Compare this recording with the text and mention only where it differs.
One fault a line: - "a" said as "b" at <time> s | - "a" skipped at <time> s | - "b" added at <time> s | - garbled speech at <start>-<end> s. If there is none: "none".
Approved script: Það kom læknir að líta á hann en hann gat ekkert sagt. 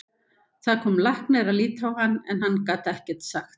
none